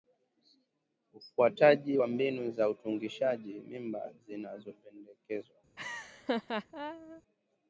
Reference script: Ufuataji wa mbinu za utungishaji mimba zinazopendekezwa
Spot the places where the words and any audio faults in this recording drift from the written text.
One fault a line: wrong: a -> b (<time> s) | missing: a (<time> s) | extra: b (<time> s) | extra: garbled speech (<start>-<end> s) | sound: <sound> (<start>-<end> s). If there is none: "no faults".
sound: laugh (5.8-7.2 s)